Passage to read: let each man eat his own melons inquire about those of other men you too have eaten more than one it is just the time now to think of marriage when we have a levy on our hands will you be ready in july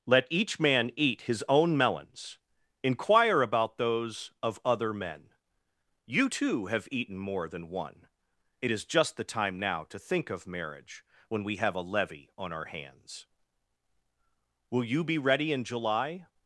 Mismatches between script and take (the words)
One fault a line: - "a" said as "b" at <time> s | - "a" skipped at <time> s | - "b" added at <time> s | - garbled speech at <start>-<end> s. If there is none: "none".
none